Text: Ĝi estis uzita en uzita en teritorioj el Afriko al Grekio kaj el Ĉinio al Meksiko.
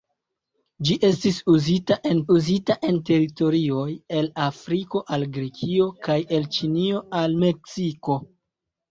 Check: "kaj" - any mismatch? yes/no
no